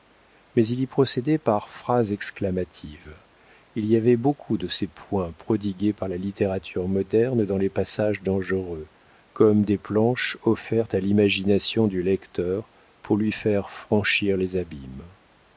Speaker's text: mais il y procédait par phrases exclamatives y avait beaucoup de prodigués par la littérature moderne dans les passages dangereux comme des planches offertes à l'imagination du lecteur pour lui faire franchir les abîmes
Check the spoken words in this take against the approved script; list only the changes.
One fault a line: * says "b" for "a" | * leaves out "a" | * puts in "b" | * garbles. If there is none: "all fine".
* puts in "il"
* puts in "ces points"